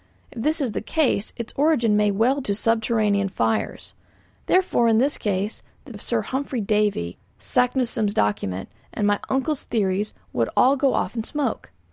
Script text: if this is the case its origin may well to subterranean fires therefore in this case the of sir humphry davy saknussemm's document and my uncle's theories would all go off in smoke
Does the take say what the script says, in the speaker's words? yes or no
yes